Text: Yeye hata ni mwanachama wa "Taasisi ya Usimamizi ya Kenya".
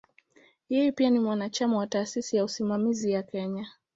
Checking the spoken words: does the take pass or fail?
fail